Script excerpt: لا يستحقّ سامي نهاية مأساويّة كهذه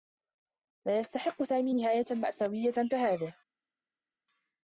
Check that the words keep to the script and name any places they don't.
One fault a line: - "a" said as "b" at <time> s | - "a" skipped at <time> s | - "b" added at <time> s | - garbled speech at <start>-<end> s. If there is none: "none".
none